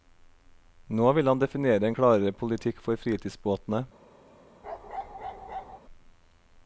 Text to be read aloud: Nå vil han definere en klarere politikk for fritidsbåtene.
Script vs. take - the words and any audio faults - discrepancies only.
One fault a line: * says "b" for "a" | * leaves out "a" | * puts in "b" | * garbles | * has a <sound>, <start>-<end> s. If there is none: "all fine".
* has a bark, 4.6-5.8 s